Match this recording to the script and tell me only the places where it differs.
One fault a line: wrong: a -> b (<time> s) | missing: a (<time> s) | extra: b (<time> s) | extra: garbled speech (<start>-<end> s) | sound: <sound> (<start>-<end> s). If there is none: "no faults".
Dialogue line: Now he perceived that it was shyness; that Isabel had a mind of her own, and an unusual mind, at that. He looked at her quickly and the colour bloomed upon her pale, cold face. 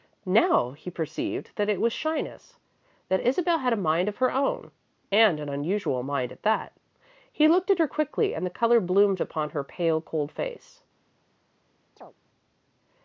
sound: chirp (12.0-12.1 s)